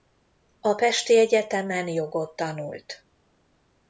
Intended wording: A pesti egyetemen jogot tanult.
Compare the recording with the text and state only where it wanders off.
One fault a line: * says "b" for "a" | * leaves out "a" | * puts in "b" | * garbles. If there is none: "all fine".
all fine